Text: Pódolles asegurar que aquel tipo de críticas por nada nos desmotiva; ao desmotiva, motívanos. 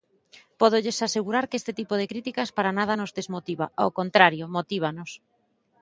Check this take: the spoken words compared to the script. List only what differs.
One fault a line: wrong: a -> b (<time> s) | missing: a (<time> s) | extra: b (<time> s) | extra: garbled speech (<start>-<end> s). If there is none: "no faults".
wrong: aquel -> este (1.6 s)
wrong: por -> para (2.6 s)
wrong: desmotiva -> contrario (4.0 s)